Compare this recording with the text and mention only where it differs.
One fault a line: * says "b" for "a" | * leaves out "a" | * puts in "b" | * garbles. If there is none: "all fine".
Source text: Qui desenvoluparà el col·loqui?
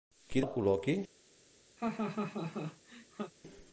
* leaves out "desenvoluparà"